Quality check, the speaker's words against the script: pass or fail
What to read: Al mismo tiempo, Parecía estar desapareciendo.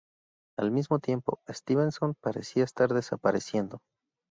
fail